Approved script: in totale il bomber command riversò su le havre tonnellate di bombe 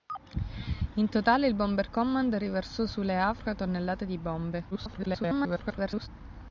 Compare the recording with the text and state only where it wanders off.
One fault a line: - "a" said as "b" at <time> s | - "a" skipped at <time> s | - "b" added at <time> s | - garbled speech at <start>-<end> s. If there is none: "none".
- garbled speech at 4.7-6.1 s